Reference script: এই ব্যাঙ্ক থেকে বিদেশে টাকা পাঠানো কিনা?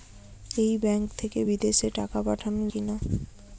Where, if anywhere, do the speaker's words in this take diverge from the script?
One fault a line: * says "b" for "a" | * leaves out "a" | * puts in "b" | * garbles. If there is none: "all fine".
all fine